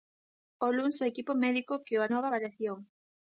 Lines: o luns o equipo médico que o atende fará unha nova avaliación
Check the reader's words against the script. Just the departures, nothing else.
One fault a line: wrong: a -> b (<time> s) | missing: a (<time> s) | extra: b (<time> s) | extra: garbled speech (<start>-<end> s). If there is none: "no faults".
missing: atende fará unha (2.0 s)